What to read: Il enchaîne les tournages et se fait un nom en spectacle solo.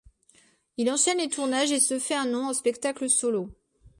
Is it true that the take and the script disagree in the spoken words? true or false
false